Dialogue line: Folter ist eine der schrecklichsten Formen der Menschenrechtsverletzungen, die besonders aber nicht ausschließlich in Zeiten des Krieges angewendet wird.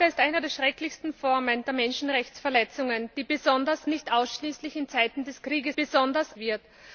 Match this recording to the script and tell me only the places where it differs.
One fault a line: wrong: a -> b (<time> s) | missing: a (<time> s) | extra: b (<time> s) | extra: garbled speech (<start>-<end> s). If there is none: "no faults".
missing: aber (3.9 s)
wrong: angewendet -> besonders (5.7 s)